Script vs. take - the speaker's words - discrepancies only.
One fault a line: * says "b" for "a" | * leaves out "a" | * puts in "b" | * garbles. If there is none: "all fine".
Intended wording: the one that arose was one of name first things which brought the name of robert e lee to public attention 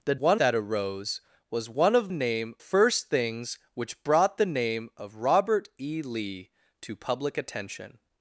all fine